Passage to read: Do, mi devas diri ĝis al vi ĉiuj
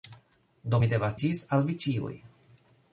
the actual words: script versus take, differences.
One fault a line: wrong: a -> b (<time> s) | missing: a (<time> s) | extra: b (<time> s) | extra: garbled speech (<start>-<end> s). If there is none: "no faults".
missing: diri (1.2 s)